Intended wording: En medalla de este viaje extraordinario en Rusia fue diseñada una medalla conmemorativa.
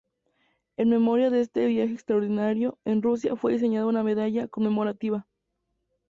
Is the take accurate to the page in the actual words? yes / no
no